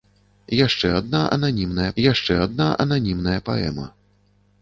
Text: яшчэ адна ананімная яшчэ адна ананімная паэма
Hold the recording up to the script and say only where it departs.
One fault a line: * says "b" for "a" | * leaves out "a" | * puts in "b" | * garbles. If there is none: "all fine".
all fine